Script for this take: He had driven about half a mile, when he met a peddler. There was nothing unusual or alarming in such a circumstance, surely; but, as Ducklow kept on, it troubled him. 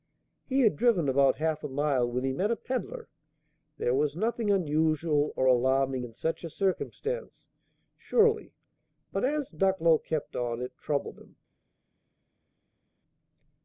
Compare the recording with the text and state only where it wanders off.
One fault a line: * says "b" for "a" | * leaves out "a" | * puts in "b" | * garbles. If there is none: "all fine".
all fine